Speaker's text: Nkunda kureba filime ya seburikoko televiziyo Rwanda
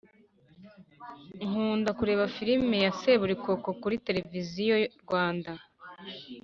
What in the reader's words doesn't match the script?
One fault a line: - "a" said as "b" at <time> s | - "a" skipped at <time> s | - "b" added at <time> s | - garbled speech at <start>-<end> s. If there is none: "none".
- "kuri" added at 3.8 s